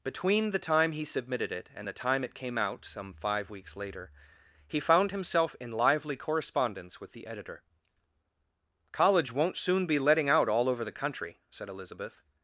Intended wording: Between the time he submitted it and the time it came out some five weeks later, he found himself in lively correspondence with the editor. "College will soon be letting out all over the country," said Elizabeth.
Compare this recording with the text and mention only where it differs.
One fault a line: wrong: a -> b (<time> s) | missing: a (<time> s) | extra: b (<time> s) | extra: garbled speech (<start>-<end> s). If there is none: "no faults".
wrong: will -> won't (9.3 s)